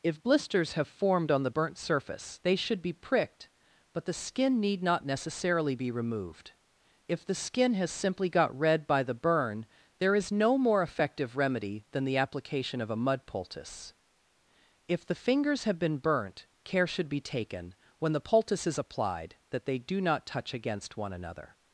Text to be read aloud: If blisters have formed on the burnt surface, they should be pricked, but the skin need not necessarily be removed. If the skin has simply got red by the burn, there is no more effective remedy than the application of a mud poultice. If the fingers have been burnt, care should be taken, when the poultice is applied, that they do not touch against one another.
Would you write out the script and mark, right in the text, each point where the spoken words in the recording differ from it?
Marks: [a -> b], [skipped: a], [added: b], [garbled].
If blisters have formed on the burnt surface, they should be pricked, but the skin need not necessarily be removed. If the skin has simply got red by the burn, there is no more effective remedy than the application of a mud poultice. If the fingers have been burnt, care should be taken, when the poultice is applied, that they do not touch against one another.